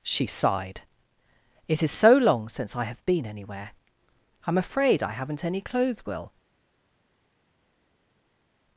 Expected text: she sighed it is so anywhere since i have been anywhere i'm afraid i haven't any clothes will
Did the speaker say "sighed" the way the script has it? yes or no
yes